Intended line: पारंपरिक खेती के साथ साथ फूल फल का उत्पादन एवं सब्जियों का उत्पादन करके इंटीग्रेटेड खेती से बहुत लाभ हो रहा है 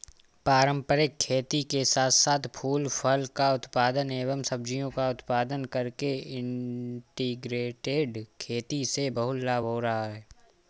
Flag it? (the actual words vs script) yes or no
no